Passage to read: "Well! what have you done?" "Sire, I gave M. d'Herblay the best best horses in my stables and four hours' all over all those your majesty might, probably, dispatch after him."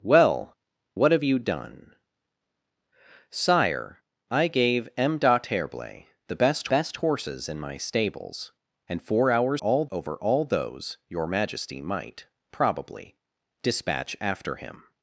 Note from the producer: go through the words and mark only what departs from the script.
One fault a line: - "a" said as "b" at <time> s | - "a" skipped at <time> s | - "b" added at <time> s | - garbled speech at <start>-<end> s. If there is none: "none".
none